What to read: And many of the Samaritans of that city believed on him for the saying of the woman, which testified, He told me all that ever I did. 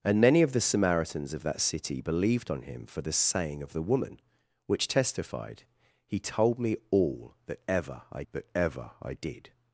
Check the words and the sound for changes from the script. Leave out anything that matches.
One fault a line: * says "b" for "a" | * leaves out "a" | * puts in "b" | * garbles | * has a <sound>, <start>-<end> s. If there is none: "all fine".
* puts in "that ever I"